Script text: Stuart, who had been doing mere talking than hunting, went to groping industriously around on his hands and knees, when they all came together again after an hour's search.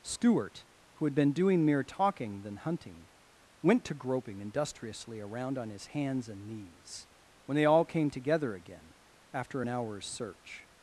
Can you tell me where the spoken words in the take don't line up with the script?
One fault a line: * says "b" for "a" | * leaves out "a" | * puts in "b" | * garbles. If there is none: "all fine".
all fine